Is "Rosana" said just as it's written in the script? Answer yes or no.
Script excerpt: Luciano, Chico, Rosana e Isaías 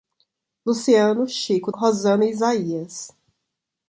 yes